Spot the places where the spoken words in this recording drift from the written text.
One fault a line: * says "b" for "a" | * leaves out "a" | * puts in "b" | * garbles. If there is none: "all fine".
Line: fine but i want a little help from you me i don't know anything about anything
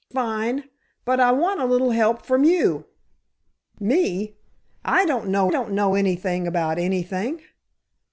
* puts in "don't know"